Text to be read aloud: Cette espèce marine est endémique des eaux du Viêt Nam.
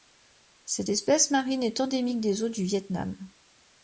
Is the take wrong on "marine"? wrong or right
right